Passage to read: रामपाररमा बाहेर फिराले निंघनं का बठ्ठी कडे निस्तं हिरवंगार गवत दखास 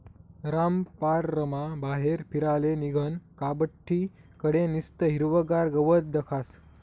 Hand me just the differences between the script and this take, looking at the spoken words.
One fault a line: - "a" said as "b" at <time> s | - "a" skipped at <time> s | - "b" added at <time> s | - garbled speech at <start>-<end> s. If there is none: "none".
none